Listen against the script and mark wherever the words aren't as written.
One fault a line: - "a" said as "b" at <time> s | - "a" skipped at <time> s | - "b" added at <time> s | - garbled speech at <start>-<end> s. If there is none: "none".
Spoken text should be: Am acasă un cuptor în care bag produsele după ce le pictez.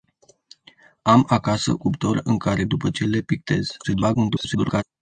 - "un" skipped at 1.8 s
- "bag produsele" skipped at 2.6 s
- garbled speech at 3.8-4.8 s